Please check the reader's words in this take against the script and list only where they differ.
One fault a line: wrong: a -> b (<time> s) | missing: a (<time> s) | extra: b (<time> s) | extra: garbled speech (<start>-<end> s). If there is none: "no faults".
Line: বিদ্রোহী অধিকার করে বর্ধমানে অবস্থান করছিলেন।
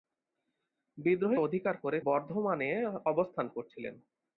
no faults